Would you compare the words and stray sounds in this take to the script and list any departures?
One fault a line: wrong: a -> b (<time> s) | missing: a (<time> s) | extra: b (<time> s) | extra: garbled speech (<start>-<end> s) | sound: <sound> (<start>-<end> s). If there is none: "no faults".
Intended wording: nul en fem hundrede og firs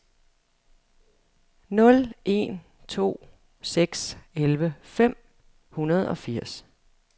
extra: to seks elleve (2.9 s)